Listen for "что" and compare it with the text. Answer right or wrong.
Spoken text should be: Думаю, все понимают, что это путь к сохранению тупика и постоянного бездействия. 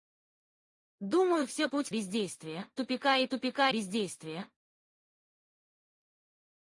wrong